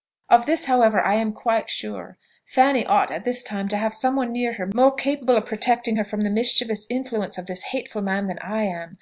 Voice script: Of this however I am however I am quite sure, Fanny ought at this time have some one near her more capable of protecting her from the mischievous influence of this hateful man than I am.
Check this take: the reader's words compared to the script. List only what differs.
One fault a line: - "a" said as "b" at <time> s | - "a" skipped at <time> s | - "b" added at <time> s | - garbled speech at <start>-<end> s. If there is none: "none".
- "however I am" skipped at 1.3 s
- "to" added at 3.7 s